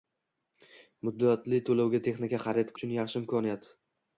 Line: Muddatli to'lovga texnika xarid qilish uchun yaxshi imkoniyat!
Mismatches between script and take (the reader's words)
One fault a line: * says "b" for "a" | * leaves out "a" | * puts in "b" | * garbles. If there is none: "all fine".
* leaves out "qilish"